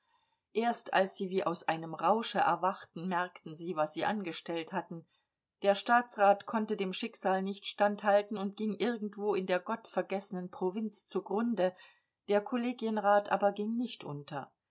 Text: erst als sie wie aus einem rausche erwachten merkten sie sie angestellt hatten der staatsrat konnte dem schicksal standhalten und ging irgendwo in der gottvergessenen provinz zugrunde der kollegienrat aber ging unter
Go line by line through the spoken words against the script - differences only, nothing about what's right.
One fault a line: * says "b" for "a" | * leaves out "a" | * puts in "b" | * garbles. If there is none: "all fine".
* puts in "was"
* puts in "nicht"
* puts in "nicht"